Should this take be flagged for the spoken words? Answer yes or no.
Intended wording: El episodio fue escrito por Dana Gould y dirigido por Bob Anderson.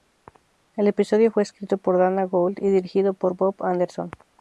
no